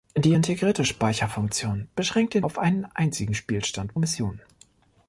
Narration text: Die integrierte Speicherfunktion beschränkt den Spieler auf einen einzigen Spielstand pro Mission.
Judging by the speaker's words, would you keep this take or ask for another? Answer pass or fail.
fail